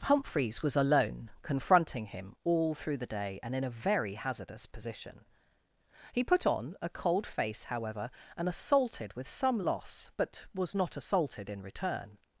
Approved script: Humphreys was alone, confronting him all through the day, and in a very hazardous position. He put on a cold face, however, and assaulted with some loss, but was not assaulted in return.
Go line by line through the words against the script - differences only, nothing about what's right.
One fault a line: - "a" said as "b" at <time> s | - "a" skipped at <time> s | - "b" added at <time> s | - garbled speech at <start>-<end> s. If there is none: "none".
none